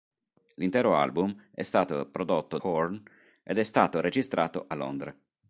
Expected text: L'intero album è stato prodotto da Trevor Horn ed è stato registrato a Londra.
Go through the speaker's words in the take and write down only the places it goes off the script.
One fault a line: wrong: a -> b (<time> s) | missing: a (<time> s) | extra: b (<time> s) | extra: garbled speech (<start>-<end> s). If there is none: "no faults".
missing: da Trevor (2.6 s)